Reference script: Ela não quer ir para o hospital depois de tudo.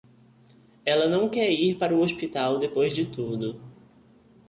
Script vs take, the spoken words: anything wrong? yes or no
no